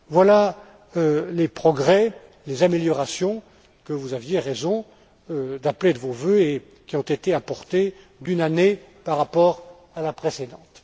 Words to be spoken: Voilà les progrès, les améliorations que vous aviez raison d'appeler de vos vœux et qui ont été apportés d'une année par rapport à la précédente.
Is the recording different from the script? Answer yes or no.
no